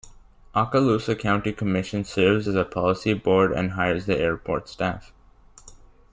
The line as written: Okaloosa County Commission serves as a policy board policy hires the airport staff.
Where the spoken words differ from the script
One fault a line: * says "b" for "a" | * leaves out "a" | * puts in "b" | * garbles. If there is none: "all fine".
* says "and" for "policy"